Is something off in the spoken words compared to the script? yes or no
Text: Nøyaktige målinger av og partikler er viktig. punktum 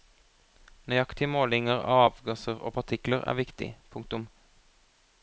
yes